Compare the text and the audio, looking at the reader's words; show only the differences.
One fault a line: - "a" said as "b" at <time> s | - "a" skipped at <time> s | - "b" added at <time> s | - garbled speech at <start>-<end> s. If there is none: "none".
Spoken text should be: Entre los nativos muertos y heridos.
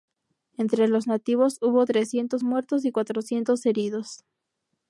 - "hubo trescientos" added at 1.6 s
- "cuatrocientos" added at 2.9 s